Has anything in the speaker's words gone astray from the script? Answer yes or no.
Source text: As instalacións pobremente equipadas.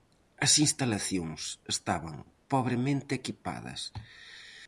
yes